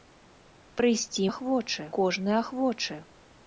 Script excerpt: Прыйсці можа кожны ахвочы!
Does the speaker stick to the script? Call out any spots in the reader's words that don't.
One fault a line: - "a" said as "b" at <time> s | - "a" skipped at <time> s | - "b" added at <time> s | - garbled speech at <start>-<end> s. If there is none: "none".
- "можа" said as "ахвочы" at 1.3 s